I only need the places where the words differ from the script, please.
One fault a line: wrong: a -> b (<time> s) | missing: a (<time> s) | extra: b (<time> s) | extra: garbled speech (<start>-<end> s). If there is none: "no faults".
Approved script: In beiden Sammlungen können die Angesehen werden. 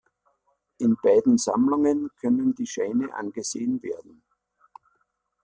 extra: Scheine (2.6 s)